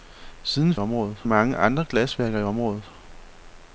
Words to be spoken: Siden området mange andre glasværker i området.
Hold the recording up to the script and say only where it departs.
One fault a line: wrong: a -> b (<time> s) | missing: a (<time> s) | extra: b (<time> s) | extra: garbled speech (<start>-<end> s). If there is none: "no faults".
no faults